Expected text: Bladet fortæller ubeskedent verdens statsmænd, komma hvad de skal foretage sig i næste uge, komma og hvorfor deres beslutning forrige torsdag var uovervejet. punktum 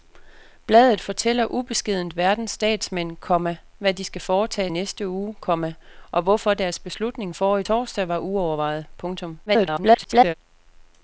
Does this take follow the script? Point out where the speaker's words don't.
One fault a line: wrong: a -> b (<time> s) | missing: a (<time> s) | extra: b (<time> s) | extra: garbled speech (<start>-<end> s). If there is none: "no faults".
missing: sig (4.7 s)
extra: garbled speech (9.5-10.3 s)